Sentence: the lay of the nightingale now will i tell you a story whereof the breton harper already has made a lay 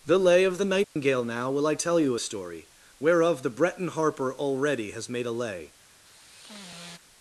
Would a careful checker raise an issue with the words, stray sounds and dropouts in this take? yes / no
yes